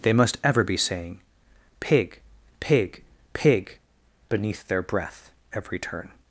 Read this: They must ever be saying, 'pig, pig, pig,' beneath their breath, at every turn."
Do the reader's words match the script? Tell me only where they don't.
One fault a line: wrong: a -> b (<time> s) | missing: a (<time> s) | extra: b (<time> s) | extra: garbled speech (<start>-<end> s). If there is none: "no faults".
missing: at (5.3 s)